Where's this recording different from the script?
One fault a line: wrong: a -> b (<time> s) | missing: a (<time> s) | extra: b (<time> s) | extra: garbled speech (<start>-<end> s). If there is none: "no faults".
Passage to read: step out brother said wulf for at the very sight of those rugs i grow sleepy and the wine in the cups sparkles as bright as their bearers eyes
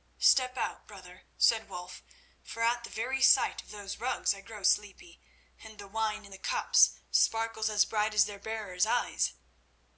no faults